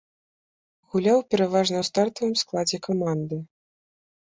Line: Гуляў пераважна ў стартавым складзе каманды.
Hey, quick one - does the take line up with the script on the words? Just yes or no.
yes